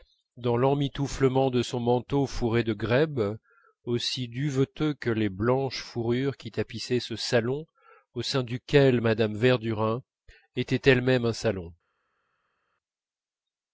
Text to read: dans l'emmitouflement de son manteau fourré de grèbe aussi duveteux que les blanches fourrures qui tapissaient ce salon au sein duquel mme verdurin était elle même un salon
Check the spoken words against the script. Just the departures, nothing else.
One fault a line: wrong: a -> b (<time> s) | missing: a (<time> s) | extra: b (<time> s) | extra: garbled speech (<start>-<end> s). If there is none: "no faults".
no faults